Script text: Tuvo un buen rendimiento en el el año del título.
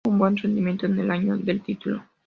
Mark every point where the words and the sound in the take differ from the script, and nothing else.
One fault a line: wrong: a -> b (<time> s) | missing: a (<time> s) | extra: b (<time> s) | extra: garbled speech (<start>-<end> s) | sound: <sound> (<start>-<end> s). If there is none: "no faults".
missing: el (1.1 s)